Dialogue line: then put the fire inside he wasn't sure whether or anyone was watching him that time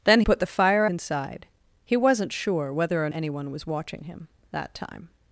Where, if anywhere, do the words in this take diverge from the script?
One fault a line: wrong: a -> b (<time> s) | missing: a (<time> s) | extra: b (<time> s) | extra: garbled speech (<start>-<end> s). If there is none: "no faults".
no faults